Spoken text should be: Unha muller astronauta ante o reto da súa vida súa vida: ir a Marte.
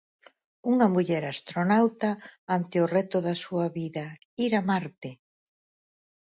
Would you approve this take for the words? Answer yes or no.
no